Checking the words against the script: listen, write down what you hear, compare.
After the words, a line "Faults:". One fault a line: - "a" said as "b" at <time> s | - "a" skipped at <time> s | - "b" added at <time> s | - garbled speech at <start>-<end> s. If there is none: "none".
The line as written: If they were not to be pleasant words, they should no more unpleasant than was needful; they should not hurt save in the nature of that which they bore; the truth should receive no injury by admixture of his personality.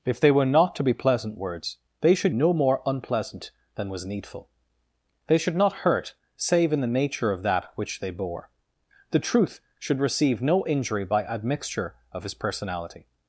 If they were not to be pleasant words, they should no more unpleasant than was needful; they should not hurt save in the nature of that which they bore; the truth should receive no injury by admixture of his personality.
Faults:
none